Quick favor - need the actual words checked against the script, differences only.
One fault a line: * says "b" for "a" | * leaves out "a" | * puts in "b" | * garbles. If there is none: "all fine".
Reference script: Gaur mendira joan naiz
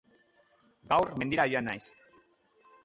all fine